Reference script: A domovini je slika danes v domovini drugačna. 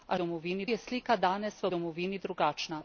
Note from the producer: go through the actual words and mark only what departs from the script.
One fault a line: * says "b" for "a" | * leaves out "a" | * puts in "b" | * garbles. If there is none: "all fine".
all fine